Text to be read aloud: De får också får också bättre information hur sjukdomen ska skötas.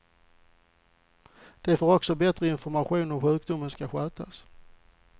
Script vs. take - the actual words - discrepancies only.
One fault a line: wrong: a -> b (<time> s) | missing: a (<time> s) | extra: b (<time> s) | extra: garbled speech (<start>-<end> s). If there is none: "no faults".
missing: får också (2.1 s)
extra: om (3.1 s)